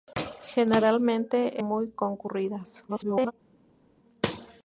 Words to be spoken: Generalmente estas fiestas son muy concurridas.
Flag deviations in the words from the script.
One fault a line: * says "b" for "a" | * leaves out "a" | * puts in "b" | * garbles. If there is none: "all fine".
* leaves out "estas fiestas son"
* garbles